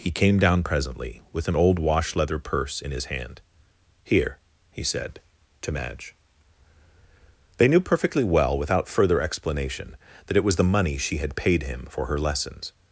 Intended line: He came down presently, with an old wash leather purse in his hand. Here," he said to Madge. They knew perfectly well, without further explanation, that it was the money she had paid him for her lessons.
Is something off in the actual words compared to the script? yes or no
no